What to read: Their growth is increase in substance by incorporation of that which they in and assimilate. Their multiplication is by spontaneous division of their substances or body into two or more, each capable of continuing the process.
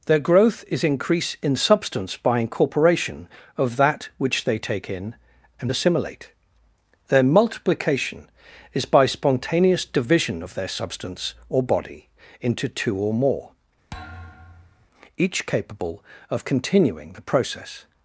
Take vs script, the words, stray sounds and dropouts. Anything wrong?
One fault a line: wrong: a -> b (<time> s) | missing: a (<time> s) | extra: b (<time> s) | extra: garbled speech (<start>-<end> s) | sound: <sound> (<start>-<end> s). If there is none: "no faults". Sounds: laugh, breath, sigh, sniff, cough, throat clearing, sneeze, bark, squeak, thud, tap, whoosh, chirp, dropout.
extra: take (4.6 s)
wrong: substances -> substance (10.7 s)
sound: thud (13.9-14.9 s)